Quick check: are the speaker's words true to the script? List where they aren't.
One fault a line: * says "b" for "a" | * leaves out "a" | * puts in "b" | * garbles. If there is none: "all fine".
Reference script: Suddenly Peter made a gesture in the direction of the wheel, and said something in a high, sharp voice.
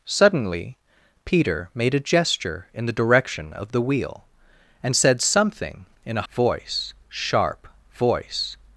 * says "voice" for "high"